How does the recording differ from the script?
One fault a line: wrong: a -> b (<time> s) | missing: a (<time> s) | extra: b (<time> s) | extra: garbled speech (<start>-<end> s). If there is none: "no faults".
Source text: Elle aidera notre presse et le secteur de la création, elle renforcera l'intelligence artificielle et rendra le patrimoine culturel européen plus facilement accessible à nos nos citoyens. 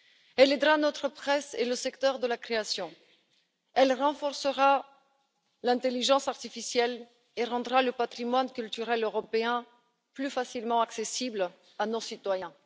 missing: nos (12.0 s)